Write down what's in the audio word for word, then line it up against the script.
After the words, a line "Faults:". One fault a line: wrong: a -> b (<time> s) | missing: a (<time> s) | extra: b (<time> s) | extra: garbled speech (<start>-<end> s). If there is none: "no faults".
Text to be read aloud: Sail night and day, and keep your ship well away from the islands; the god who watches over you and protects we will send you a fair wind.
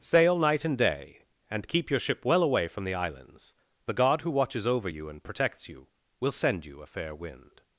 Sail night and day, and keep your ship well away from the islands; the god who watches over you and protects you will send you a fair wind.
Faults:
wrong: we -> you (5.7 s)